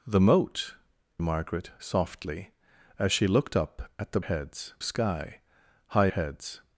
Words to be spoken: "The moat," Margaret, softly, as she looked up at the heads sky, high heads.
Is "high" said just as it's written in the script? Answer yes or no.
yes